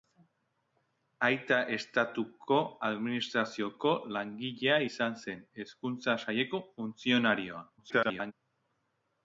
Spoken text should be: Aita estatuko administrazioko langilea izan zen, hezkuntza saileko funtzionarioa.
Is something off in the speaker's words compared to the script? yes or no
yes